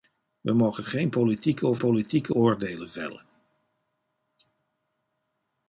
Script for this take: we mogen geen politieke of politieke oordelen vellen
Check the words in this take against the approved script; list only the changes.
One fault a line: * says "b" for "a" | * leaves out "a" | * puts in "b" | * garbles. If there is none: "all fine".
all fine